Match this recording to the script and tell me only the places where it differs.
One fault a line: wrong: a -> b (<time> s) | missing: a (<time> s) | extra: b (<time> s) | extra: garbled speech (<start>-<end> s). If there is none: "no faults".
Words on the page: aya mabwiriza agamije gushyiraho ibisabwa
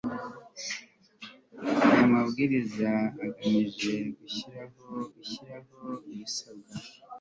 extra: gushyiraho (5.1 s)